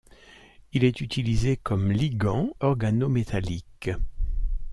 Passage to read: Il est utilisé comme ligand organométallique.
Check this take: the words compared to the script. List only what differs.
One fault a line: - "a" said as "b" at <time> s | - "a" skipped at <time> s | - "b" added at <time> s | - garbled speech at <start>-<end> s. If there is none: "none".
none